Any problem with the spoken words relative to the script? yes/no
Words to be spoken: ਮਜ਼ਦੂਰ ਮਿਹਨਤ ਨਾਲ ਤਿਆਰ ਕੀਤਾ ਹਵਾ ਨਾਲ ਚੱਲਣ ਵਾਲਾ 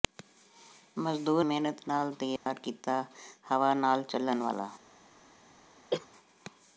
no